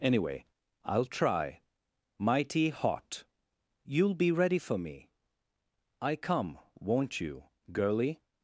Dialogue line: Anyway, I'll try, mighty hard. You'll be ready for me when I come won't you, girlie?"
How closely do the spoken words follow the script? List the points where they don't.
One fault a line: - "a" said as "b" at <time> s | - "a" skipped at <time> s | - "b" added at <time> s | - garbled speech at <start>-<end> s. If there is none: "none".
- "hard" said as "hot" at 2.7 s
- "when" skipped at 5.1 s